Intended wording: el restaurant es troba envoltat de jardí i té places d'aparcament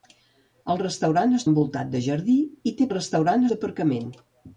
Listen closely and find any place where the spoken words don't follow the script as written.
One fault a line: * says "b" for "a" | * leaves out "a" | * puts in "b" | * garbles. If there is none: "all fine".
* leaves out "troba"
* says "restaurant" for "places"